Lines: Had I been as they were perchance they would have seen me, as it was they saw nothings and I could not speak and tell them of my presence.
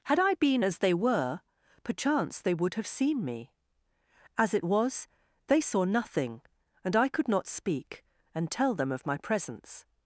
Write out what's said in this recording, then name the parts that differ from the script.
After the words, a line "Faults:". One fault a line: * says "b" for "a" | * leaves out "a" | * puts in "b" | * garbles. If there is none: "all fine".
Had I been as they were perchance they would have seen me, as it was they saw nothing and I could not speak and tell them of my presence.
Faults:
* says "nothing" for "nothings"